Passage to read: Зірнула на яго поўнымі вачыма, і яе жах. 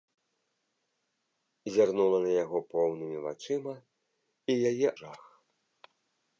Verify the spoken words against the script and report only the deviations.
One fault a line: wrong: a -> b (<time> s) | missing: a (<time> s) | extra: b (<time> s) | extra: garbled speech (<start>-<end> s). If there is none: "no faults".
no faults